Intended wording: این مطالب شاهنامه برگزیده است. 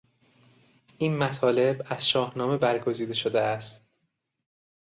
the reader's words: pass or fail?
fail